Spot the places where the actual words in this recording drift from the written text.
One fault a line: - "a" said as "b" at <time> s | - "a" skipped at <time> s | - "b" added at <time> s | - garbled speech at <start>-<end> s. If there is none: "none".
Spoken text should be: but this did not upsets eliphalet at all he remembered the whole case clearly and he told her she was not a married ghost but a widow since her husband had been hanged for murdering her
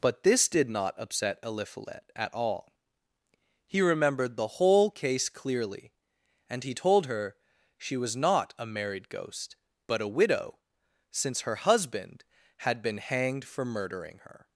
- "upsets" said as "upset" at 1.0 s